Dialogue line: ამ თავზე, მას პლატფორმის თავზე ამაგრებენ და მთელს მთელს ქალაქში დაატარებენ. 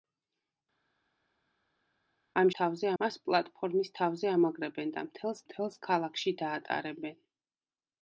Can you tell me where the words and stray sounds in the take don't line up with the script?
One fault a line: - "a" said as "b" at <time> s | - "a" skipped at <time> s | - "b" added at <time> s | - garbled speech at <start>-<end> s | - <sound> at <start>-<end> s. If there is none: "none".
none